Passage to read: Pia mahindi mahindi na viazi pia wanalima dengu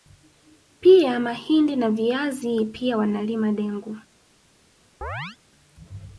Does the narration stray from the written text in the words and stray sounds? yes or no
yes